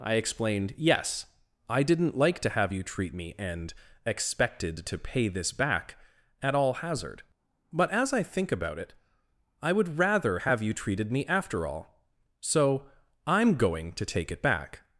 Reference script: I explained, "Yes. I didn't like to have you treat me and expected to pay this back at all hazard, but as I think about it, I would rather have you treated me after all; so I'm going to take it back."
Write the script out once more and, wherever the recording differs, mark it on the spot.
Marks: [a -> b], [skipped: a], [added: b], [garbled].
I explained, "Yes. I didn't like to have you treat me and expected to pay this back at all hazard, but as I think about it, I would rather have you treated me after all; so I'm going to take it back."